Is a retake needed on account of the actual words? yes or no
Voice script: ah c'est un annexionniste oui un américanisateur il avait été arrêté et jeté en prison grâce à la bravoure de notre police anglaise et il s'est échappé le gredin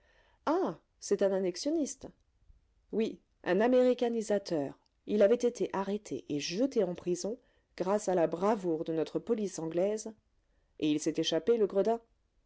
no